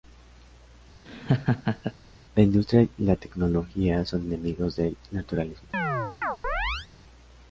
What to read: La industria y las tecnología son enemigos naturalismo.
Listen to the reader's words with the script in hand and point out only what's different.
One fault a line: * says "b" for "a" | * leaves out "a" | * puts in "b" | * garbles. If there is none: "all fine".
* says "la" for "las"
* puts in "del"